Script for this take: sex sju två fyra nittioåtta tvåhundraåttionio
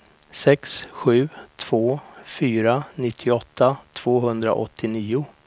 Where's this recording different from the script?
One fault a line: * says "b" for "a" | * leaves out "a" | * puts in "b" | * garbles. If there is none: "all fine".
all fine